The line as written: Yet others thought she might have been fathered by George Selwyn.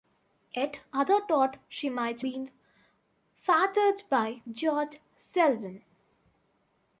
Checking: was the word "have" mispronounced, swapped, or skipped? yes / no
yes